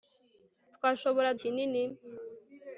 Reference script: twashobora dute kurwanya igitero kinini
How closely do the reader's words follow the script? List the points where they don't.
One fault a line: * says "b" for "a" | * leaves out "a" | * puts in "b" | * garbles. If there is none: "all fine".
* leaves out "dute kurwanya igitero"